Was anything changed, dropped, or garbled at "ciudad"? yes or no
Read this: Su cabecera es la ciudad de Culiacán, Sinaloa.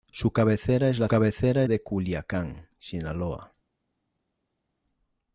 yes